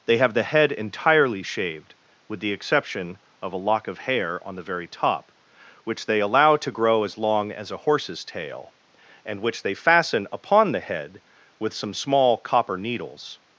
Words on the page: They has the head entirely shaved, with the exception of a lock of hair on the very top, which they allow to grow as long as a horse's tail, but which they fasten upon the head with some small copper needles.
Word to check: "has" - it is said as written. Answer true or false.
false